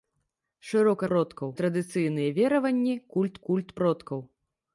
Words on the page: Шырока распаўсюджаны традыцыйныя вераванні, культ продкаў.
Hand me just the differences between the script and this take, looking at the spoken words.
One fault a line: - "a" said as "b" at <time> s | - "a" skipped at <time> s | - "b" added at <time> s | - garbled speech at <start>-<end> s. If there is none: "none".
- "распаўсюджаны" said as "продкаў" at 1.1 s
- "культ" added at 3.5 s